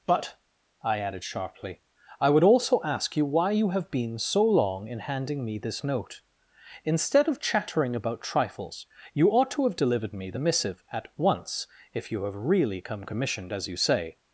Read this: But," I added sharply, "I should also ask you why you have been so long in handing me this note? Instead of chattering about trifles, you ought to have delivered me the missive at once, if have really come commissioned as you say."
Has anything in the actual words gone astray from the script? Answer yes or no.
yes